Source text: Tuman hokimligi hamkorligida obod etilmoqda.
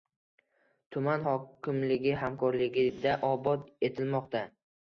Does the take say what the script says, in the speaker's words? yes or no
yes